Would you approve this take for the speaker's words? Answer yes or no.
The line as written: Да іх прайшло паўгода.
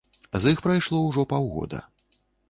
no